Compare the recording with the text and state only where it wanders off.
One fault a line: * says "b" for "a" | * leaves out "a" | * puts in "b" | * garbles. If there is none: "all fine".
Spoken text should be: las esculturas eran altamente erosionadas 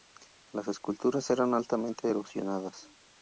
all fine